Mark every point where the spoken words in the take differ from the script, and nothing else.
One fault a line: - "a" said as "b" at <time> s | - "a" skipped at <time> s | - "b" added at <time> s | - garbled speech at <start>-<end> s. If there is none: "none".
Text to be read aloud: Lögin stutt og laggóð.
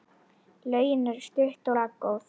- "eru" added at 1.1 s